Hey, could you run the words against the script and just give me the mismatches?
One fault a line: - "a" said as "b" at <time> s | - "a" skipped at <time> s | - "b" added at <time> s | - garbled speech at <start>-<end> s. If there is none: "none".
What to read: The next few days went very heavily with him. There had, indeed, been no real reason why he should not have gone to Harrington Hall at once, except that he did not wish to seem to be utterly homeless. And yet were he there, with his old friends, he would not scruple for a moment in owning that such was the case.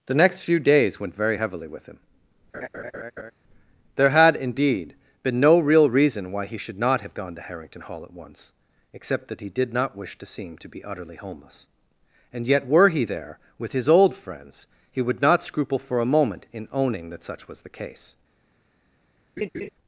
none